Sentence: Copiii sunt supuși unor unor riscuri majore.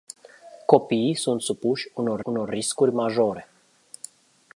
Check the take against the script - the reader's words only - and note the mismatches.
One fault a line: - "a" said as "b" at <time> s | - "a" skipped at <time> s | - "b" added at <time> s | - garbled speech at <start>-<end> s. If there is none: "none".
none